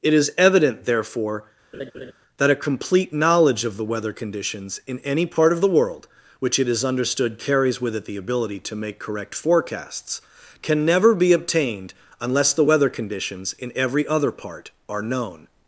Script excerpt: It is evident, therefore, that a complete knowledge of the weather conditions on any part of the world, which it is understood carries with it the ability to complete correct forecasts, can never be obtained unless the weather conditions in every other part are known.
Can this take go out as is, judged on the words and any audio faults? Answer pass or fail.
fail